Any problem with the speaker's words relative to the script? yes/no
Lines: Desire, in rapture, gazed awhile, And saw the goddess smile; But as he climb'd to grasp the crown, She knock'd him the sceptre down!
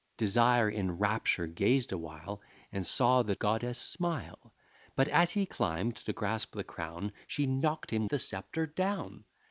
no